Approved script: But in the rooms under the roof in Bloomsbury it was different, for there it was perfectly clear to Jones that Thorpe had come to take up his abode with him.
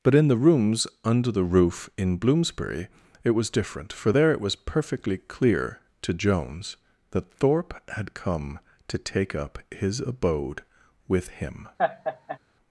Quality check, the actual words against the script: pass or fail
pass